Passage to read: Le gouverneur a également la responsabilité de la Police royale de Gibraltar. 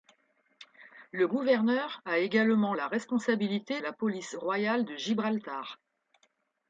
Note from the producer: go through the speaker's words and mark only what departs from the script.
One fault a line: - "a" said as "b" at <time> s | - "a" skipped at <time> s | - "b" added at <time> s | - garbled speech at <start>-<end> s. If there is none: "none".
- "de" skipped at 3.8 s